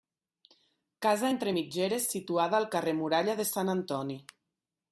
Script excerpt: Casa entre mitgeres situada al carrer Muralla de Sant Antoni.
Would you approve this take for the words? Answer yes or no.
yes